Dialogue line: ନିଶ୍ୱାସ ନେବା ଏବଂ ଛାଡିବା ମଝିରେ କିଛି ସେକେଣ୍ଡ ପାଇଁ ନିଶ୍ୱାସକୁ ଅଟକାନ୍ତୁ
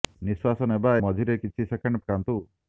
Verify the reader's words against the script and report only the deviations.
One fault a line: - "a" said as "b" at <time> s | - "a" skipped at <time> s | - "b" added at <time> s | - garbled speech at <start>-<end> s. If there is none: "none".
- "ଏବଂ ଛାଡିବା" skipped at 0.9 s
- "ପାଇଁ ନିଶ୍ୱାସକୁ" skipped at 2.0 s